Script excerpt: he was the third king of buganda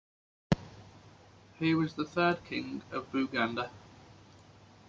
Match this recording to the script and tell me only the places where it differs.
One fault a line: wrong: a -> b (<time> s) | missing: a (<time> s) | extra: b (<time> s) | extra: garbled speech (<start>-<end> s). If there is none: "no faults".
no faults